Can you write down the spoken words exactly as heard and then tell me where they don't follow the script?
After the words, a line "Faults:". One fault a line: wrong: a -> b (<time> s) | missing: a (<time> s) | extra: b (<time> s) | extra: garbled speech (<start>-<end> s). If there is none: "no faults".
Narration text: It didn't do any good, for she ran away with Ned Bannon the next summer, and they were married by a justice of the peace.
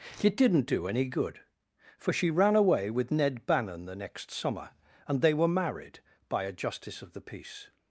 It didn't do any good, for she ran away with Ned Bannon the next summer, and they were married by a justice of the peace.
Faults:
no faults